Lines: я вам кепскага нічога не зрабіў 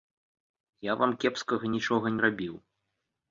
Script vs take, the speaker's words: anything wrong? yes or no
yes